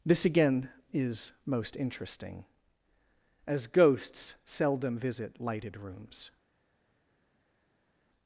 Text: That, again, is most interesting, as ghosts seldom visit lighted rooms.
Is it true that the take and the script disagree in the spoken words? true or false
true